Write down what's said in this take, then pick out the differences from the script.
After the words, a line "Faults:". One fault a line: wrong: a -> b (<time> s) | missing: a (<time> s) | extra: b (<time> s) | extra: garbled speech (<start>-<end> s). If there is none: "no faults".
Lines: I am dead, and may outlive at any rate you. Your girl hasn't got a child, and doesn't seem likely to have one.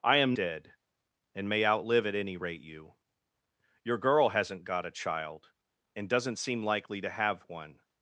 I am dead, and may outlive at any rate you. Your girl hasn't got a child, and doesn't seem likely to have one.
Faults:
no faults